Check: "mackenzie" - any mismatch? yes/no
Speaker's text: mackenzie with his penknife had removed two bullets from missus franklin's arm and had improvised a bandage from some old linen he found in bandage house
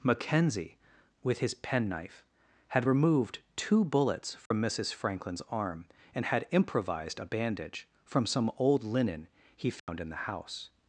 no